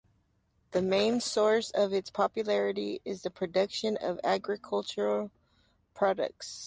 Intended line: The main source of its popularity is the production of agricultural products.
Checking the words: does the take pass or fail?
pass